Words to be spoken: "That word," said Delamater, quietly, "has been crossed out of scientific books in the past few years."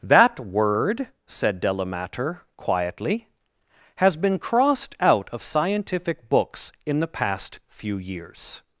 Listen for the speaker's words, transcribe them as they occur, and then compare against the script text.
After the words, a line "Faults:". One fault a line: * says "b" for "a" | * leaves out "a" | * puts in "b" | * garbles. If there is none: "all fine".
"That word," said Delamater, quietly, "has been crossed out of scientific books in the past few years."
Faults:
all fine